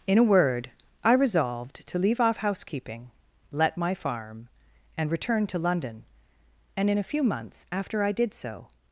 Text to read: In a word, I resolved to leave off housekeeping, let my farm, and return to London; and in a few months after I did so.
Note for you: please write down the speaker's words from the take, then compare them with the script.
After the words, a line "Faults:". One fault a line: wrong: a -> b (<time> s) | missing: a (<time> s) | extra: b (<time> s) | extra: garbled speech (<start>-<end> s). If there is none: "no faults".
In a word, I resolved to leave off housekeeping, let my farm, and return to London; and in a few months after I did so.
Faults:
no faults